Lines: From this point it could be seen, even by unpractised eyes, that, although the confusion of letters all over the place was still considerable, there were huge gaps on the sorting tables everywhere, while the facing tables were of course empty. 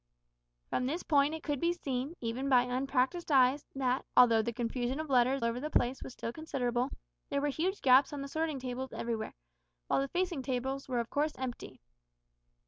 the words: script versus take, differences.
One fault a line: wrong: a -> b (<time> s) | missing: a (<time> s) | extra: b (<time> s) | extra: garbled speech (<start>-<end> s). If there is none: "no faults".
missing: all (5.5 s)